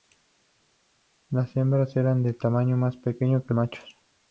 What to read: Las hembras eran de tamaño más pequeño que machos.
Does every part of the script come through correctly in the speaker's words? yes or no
yes